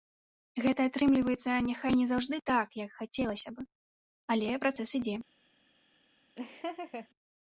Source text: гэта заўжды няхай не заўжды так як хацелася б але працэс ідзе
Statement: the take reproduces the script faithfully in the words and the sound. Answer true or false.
false